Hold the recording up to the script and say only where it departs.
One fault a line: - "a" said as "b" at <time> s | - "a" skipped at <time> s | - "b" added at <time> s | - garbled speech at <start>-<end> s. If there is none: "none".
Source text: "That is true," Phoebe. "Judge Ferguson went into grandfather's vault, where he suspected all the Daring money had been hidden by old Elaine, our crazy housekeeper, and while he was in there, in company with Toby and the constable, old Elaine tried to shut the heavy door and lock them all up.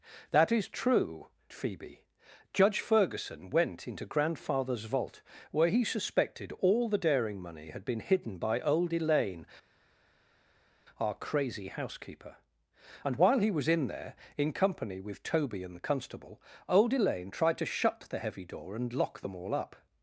none